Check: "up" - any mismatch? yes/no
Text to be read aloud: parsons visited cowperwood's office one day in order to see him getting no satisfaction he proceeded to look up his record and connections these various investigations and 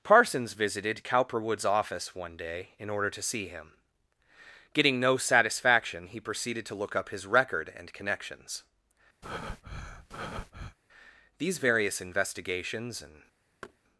no